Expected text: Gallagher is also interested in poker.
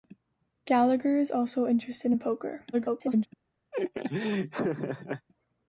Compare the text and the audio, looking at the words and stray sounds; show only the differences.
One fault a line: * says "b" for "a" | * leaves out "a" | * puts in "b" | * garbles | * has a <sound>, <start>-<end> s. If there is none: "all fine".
* garbles
* has a laugh, 3.7-5.3 s